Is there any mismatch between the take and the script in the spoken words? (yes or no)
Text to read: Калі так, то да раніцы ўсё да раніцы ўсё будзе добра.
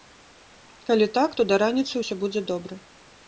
yes